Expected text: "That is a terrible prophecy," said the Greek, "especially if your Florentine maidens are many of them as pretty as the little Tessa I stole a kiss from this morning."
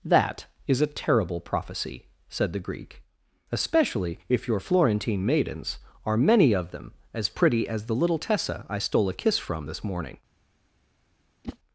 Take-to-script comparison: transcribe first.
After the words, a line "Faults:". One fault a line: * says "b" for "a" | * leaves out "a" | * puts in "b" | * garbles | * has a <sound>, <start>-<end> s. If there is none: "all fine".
"That is a terrible prophecy," said the Greek, "especially if your Florentine maidens are many of them as pretty as the little Tessa I stole a kiss from this morning."
Faults:
* has a whoosh, 11.4-11.6 s